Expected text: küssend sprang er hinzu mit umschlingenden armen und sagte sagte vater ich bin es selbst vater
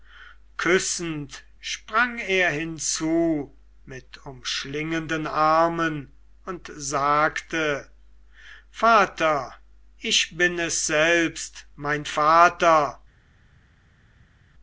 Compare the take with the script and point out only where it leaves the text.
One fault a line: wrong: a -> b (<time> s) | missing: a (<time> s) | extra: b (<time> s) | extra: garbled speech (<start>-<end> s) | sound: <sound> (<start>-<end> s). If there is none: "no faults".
missing: sagte (7.9 s)
extra: mein (11.8 s)